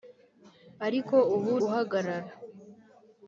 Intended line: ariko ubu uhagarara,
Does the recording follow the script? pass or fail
pass